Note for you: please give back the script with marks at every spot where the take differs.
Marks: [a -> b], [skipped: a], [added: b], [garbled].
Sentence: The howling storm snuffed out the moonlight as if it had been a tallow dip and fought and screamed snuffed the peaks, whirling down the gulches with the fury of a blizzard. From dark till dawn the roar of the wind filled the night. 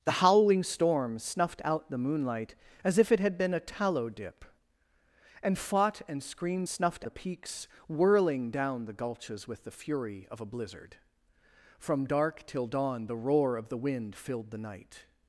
The howling storm snuffed out the moonlight as if it had been a tallow dip and fought and screamed snuffed the peaks, whirling down the gulches with the fury of a blizzard. From dark till dawn the roar of the wind filled the night.